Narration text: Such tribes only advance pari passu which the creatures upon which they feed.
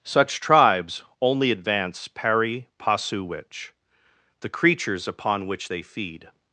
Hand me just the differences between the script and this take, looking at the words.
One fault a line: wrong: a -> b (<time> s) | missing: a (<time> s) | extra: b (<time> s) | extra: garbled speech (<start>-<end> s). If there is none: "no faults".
no faults